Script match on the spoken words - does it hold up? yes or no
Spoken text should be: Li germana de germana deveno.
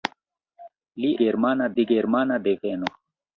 yes